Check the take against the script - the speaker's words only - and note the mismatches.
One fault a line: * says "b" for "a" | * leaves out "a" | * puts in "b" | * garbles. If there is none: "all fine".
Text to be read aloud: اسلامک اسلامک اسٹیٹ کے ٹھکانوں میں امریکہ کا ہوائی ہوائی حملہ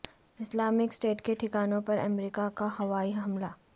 * leaves out "اسلامک"
* says "پر" for "میں"
* leaves out "ہوائی"